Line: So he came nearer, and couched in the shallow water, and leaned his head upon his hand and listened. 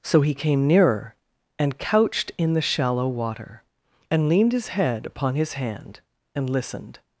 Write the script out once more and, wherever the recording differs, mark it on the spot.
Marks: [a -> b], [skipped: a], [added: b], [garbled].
So he came nearer, and couched in the shallow water, and leaned his head upon his hand and listened.